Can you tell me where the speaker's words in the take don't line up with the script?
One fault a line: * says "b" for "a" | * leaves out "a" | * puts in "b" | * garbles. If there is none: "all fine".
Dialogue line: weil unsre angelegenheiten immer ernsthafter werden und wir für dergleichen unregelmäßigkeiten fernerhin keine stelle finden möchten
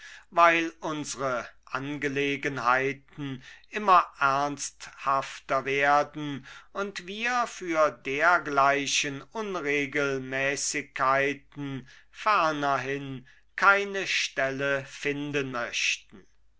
all fine